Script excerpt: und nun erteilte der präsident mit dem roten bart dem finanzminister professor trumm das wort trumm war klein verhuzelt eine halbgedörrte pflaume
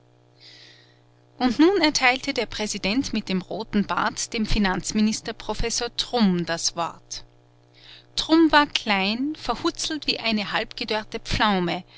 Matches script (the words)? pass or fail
fail